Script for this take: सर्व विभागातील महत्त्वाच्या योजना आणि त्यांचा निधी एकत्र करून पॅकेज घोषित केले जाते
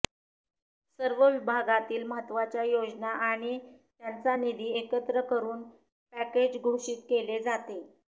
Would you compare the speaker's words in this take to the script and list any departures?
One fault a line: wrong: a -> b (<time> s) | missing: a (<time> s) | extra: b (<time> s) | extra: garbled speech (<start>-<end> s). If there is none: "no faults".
no faults